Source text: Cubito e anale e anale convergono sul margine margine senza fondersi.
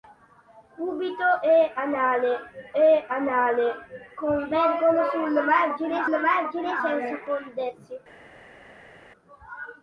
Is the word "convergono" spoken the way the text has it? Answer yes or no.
yes